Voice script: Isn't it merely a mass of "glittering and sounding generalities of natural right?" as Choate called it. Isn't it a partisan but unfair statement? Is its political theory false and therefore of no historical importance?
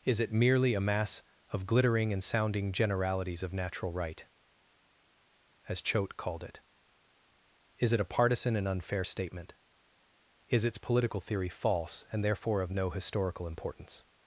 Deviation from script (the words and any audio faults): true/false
true